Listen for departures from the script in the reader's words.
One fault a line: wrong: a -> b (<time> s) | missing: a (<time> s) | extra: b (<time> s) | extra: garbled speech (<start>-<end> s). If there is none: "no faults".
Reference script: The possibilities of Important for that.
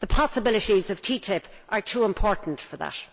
extra: TTIP are too (1.0 s)